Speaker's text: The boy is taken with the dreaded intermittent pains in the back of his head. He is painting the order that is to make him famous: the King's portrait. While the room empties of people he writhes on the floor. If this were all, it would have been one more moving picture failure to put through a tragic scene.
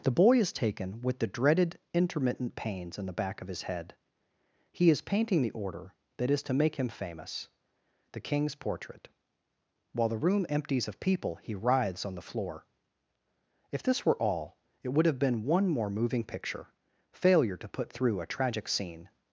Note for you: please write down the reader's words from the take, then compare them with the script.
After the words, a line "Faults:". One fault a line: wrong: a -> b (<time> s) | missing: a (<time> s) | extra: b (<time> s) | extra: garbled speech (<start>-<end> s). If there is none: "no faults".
The boy is taken with the dreaded intermittent pains in the back of his head. He is painting the order that is to make him famous: the King's portrait. While the room empties of people he writhes on the floor. If this were all, it would have been one more moving picture failure to put through a tragic scene.
Faults:
no faults